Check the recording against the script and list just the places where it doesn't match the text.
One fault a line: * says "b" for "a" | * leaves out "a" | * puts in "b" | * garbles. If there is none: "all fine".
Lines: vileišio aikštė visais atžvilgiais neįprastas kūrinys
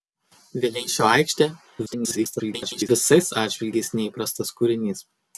* garbles